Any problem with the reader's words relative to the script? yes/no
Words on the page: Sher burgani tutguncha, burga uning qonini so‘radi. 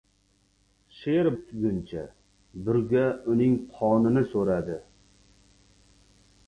yes